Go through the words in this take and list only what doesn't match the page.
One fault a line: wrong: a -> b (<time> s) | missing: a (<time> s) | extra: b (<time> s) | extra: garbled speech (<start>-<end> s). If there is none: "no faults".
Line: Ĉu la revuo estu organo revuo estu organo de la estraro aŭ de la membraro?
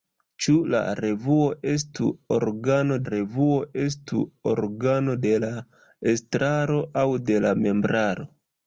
no faults